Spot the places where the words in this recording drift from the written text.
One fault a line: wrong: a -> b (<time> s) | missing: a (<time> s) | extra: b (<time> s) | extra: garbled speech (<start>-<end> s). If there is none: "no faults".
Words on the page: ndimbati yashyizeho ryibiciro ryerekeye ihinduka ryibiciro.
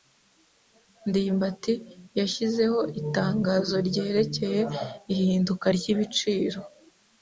wrong: ryibiciro -> itangazo (3.0 s)